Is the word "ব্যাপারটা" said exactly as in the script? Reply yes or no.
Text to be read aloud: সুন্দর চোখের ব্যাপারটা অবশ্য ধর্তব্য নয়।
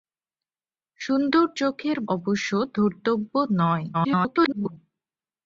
no